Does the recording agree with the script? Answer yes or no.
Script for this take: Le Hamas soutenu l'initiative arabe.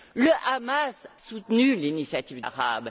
yes